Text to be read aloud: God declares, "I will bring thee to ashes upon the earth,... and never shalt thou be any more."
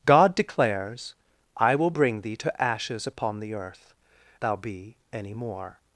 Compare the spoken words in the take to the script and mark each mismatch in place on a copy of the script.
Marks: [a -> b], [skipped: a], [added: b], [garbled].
God declares, "I will bring thee to ashes upon the earth,... [skipped: and never shalt] thou be any more."